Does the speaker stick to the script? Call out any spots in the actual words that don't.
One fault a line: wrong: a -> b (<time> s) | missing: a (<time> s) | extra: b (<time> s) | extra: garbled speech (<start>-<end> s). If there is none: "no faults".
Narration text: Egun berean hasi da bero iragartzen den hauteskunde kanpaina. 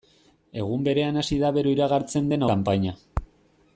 missing: hauteskunde (2.5 s)